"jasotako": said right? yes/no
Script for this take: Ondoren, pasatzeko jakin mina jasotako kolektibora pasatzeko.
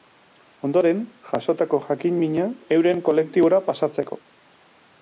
no